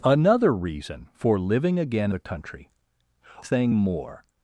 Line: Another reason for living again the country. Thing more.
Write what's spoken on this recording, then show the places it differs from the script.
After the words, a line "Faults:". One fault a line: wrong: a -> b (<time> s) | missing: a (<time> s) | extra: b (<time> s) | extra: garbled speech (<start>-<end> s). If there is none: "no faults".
Another reason for living again the country. Thing more.
Faults:
no faults